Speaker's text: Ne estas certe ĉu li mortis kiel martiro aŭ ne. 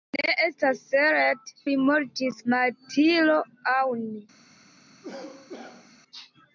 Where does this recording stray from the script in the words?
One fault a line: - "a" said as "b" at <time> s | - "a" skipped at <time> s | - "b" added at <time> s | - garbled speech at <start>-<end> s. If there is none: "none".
- "ĉu" skipped at 1.5 s
- "kiel" skipped at 2.4 s